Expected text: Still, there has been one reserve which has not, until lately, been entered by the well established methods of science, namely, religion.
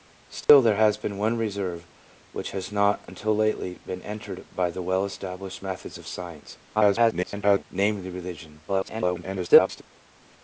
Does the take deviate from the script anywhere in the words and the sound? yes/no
yes